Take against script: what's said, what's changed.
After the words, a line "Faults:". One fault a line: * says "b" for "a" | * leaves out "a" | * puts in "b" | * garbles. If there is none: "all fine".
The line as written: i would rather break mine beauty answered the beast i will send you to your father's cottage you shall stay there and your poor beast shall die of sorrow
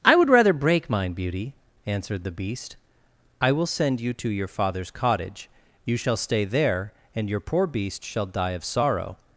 i would rather break mine beauty answered the beast i will send you to your father's cottage you shall stay there and your poor beast shall die of sorrow
Faults:
all fine